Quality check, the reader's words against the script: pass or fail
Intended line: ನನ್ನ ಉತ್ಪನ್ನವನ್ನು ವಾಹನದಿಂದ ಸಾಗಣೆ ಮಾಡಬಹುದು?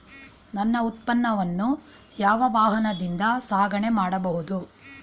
fail